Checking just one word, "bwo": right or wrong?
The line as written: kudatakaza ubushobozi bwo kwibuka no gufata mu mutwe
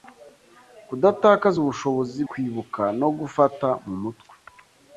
wrong